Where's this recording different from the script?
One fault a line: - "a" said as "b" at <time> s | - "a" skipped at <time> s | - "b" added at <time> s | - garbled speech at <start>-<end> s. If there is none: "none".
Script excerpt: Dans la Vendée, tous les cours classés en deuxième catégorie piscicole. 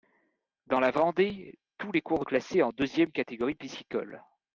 none